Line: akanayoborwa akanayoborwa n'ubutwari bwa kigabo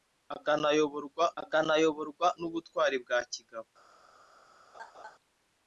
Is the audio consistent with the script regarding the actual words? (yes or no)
yes